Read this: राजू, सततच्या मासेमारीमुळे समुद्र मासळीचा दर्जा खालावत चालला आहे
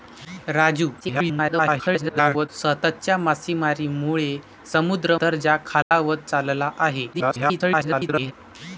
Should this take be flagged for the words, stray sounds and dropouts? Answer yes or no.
yes